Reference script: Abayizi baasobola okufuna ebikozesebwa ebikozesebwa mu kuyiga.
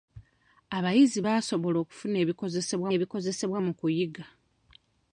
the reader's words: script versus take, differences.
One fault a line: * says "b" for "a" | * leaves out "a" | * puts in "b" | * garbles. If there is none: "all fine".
all fine